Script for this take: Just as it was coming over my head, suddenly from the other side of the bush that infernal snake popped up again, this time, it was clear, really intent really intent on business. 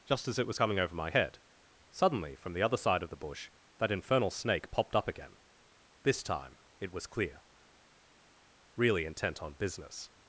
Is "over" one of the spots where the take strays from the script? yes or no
no